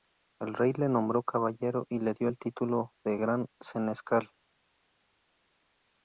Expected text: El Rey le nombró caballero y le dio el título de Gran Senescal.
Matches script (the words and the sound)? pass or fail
pass